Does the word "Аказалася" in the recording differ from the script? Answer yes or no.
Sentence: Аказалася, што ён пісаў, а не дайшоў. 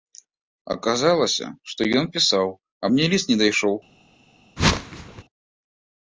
no